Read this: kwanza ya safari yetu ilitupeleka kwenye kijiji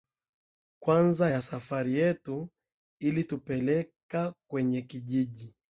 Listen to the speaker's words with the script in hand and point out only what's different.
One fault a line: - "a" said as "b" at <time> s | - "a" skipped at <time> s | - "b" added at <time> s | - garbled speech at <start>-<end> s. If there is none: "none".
none